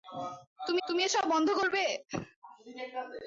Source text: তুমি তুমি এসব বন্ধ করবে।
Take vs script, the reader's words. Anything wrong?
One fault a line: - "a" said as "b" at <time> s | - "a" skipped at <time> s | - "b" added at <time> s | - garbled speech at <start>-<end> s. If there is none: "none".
none